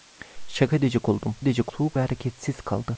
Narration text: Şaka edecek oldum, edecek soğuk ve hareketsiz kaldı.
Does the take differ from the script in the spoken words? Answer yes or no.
no